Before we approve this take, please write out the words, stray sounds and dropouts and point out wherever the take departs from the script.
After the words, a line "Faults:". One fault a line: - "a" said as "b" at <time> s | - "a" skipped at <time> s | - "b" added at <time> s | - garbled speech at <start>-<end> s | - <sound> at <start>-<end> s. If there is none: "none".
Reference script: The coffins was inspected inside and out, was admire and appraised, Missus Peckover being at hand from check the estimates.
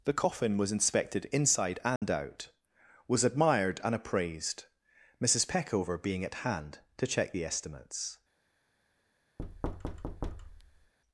The coffin was inspected inside and out, was admired and appraised, Missus Peckover being at hand to check the estimates.
Faults:
- "coffins" said as "coffin" at 0.1 s
- dropout at 2.0-2.0 s
- "admire" said as "admired" at 3.2 s
- "from" said as "to" at 7.0 s
- thud at 9.4-10.9 s